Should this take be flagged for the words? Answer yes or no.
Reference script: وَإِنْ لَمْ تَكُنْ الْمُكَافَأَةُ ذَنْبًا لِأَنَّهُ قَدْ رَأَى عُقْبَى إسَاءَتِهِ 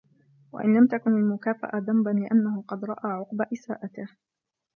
no